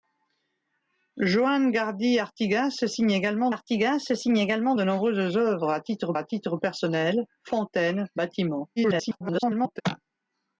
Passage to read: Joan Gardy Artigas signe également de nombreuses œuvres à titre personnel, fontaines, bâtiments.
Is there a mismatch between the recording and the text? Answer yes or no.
yes